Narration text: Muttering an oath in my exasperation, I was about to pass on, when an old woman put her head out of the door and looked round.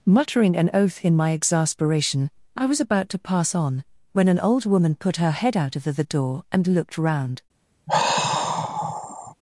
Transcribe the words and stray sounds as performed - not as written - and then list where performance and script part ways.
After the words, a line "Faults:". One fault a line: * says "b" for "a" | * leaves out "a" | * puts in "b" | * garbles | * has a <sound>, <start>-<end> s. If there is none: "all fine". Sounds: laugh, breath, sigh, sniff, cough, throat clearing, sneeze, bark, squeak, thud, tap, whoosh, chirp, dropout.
Muttering an oath in my exasperation, I was about to pass on, when an old woman put her head out of the the door and looked round.
Faults:
* puts in "the"
* has a sigh, 7.9-9.3 s